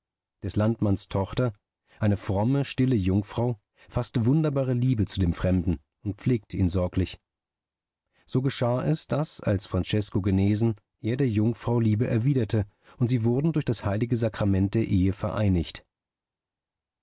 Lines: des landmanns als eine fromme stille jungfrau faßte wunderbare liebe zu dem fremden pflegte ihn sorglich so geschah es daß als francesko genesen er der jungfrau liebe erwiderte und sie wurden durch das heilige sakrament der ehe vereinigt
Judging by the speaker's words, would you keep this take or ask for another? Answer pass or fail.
fail